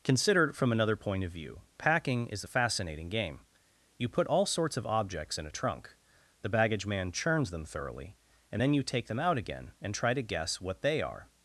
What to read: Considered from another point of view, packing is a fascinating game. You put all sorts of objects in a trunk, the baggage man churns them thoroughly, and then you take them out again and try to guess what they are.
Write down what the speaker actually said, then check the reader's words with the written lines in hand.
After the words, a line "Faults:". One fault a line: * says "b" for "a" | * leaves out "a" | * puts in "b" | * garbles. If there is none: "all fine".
Considered from another point of view, packing is a fascinating game. You put all sorts of objects in a trunk, the baggage man churns them thoroughly, and then you take them out again and try to guess what they are.
Faults:
all fine